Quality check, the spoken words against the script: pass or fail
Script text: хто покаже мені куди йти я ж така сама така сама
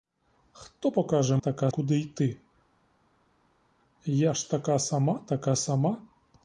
fail